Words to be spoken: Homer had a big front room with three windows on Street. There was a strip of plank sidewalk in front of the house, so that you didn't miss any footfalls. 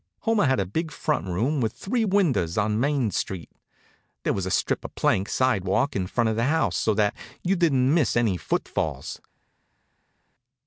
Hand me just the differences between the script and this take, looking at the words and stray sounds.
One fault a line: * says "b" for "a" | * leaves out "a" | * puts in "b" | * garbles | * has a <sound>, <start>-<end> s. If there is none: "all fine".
* puts in "Main"